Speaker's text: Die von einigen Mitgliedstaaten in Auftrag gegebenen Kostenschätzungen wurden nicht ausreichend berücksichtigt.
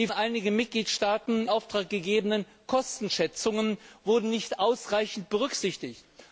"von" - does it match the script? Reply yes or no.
no